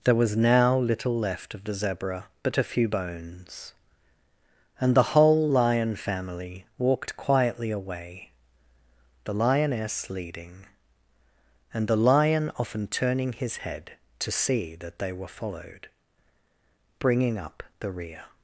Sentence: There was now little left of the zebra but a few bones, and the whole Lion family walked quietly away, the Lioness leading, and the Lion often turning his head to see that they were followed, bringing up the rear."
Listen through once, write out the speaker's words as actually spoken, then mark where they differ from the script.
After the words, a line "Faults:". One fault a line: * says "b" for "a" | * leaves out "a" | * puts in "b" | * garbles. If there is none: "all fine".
There was now little left of the zebra but a few bones, and the whole Lion family walked quietly away, the Lioness leading, and the Lion often turning his head to see that they were followed, bringing up the rear."
Faults:
all fine